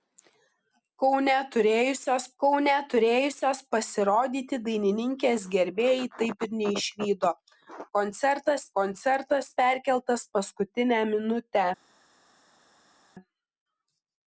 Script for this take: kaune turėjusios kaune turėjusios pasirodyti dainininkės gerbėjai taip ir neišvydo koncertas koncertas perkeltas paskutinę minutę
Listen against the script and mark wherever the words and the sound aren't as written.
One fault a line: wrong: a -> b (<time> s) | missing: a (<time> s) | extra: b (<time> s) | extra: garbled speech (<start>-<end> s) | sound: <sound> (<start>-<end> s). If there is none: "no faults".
no faults